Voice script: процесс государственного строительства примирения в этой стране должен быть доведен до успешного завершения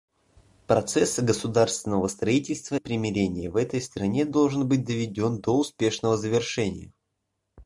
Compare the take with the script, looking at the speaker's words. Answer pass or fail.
pass